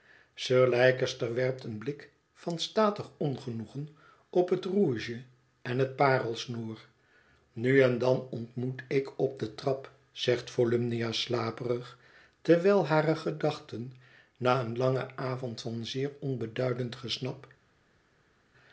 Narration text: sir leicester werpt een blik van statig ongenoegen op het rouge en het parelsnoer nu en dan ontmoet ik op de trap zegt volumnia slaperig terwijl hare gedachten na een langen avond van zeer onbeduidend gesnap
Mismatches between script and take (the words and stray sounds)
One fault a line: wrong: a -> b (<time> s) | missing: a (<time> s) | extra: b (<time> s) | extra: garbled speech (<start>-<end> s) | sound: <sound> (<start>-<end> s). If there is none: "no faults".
no faults